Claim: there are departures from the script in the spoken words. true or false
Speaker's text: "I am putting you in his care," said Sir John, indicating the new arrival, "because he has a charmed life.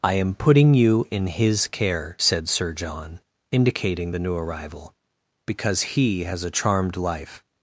false